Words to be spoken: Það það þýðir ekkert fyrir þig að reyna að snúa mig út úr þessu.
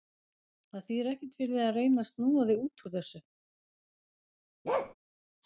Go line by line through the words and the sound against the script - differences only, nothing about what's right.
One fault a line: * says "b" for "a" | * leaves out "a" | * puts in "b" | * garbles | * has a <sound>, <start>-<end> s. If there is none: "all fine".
* leaves out "það"
* says "þig" for "mig"
* has a bark, 4.6-4.9 s